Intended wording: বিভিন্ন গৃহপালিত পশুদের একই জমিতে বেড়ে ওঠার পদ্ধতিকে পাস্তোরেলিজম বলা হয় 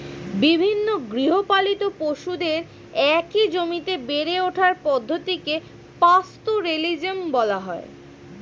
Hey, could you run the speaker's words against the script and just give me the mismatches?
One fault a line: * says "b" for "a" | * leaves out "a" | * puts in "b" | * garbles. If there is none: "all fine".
all fine